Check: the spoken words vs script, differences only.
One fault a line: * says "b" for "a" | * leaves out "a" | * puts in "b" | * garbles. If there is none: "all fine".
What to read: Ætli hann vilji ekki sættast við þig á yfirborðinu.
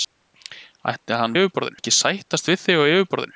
* says "yfirborðinu" for "vilji"